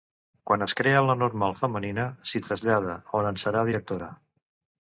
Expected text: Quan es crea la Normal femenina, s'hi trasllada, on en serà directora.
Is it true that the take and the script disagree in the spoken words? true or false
false